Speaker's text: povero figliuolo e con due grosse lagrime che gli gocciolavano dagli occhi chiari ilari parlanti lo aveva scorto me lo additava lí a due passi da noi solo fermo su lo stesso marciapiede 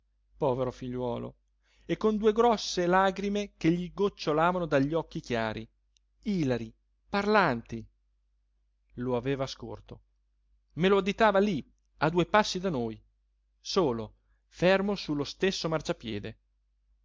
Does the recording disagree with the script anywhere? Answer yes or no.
no